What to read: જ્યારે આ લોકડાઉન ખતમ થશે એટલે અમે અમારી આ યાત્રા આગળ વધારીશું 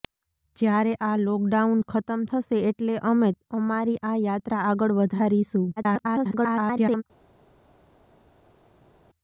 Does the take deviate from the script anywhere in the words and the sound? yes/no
yes